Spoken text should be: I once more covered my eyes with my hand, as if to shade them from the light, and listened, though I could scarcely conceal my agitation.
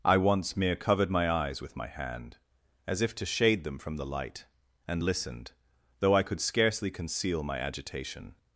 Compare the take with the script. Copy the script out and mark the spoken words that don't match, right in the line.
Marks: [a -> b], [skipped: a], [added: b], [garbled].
I once [more -> mere] covered my eyes with my hand, as if to shade them from the light, and listened, though I could scarcely conceal my agitation.